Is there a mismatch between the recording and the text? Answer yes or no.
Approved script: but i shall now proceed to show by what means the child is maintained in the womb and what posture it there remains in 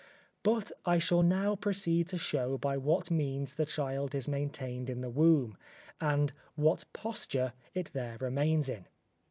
no